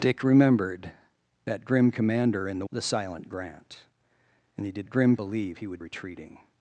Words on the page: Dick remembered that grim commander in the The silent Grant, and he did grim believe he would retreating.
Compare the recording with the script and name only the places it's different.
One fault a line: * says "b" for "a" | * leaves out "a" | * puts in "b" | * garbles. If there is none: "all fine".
all fine